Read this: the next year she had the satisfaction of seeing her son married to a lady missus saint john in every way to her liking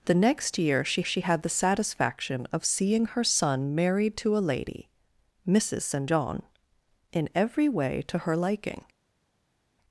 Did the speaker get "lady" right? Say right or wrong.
right